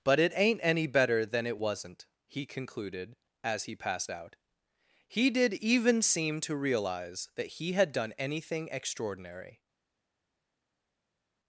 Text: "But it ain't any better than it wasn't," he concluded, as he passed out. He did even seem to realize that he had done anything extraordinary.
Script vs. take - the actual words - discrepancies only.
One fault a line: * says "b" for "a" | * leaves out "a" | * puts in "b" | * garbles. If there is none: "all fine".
all fine